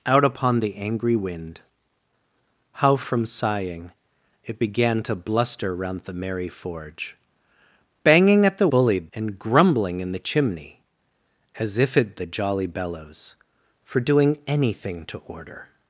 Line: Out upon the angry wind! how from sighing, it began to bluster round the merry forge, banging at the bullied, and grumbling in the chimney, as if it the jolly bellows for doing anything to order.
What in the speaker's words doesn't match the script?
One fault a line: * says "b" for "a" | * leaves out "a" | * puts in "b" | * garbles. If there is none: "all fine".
all fine